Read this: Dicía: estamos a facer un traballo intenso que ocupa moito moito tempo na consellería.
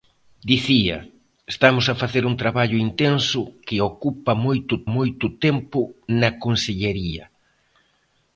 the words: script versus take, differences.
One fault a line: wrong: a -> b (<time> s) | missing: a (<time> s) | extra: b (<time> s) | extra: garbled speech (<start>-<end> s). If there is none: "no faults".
no faults